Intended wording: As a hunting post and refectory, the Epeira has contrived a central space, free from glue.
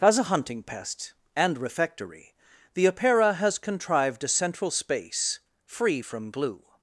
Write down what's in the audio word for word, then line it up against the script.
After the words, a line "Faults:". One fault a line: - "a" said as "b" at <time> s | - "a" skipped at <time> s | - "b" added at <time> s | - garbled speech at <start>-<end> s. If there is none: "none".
As a hunting pest and refectory, the Epeira has contrived a central space, free from glue.
Faults:
- "post" said as "pest" at 0.6 s